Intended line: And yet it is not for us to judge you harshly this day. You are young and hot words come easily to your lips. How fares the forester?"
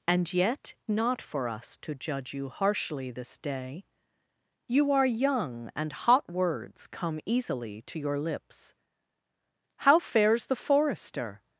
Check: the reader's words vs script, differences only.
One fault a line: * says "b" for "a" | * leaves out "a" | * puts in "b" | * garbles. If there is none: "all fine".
* leaves out "it is"